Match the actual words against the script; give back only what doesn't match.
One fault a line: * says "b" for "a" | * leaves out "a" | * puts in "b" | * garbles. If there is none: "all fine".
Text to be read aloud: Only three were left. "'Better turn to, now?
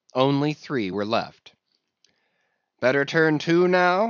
all fine